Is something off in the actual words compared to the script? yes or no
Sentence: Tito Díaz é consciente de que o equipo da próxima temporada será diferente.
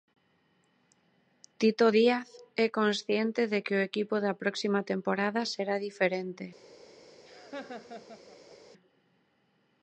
no